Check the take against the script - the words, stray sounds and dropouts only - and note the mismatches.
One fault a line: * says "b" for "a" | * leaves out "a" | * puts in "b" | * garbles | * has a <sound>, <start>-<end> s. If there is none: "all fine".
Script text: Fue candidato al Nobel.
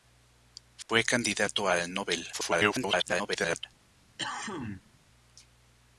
* has a dropout, 0.8-0.9 s
* garbles
* has a cough, 4.2-5.0 s